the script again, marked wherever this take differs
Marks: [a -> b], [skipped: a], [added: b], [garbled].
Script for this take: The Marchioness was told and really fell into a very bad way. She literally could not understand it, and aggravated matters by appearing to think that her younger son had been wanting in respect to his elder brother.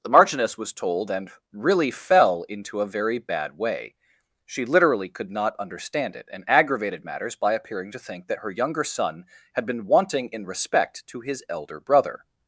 The Marchioness was told and really fell into a very bad way. She literally could not understand it, and aggravated matters by appearing to think that her younger son had been wanting in respect to his elder brother.